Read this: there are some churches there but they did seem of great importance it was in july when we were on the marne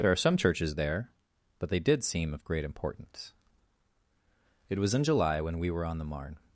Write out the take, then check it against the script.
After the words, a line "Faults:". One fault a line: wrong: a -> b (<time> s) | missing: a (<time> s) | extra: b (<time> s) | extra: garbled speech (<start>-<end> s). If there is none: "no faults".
there are some churches there but they did seem of great importance it was in july when we were on the marne
Faults:
no faults